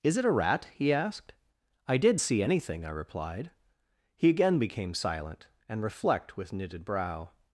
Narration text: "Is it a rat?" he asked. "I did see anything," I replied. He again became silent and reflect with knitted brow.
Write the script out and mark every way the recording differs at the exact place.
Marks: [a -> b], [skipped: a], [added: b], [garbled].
"Is it a rat?" he asked. "I did see anything," I replied. He again became silent and reflect with knitted brow.